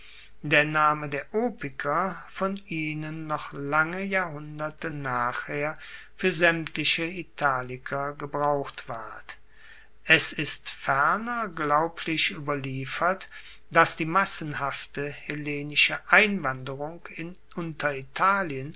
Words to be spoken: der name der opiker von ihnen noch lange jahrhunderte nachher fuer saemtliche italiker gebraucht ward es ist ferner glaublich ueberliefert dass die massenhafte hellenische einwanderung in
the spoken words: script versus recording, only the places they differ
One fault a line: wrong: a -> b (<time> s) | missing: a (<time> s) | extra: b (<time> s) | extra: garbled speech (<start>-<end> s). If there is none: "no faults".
no faults